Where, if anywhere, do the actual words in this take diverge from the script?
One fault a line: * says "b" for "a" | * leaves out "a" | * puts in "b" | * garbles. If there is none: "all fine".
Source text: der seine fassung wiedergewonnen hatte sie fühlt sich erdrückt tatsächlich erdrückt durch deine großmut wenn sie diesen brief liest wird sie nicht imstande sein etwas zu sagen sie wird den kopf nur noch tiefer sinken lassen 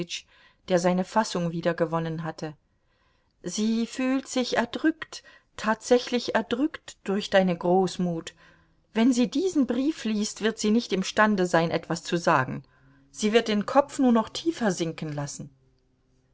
all fine